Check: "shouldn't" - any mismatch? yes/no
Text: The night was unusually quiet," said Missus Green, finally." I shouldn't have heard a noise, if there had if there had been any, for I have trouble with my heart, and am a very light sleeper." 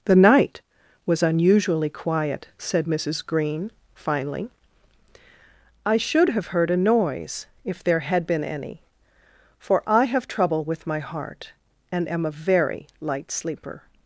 yes